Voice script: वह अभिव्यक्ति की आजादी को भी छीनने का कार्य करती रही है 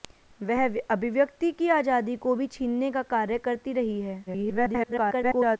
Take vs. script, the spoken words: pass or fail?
fail